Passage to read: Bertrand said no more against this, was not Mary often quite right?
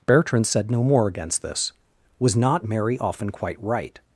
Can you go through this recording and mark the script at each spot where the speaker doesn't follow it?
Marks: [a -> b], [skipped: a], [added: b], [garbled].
Bertrand said no more against this, was not Mary often quite right?